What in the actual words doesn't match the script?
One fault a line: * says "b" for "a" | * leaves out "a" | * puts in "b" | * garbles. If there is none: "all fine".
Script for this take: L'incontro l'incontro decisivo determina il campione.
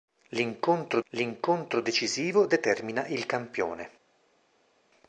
all fine